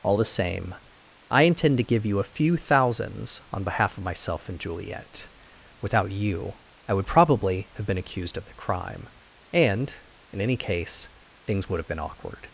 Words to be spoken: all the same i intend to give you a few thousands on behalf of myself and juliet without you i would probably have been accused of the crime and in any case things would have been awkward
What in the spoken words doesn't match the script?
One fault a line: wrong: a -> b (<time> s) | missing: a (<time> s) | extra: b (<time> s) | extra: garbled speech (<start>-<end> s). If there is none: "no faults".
no faults